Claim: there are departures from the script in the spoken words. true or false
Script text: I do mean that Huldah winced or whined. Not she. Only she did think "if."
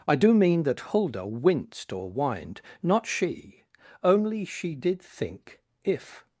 false